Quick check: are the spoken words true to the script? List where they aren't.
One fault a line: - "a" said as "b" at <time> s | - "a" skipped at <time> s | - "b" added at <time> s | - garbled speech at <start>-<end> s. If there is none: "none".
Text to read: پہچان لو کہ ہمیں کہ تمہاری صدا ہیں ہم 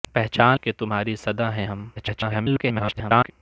- "لو کہ ہمیں" skipped at 0.6 s
- garbled speech at 2.0-3.3 s